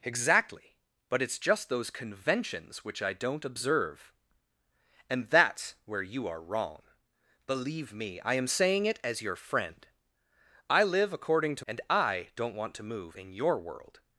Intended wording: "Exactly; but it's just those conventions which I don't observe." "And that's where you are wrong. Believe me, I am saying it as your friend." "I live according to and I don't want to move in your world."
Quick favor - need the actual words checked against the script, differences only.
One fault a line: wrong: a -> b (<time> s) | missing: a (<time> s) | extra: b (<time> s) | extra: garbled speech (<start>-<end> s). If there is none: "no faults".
no faults